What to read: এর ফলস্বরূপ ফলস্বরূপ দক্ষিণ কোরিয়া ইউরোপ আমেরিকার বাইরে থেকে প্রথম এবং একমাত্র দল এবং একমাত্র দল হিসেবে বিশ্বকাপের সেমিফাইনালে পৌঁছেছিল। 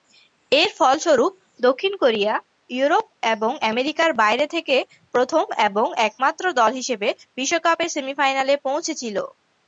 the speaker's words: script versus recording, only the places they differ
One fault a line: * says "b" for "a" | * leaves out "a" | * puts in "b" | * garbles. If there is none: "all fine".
* leaves out "ফলস্বরূপ"
* puts in "এবং"
* leaves out "এবং একমাত্র দল"